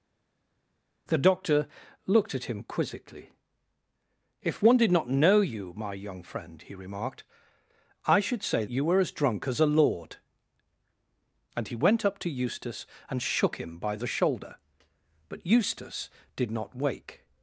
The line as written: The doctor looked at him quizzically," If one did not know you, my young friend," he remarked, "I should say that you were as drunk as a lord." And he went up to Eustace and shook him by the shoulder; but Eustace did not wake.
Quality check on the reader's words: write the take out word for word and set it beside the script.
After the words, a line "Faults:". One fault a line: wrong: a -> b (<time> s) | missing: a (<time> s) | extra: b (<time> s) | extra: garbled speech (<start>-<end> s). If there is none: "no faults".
The doctor looked at him quizzically," If one did not know you, my young friend," he remarked, "I should say you were as drunk as a lord." And he went up to Eustace and shook him by the shoulder; but Eustace did not wake.
Faults:
missing: that (8.7 s)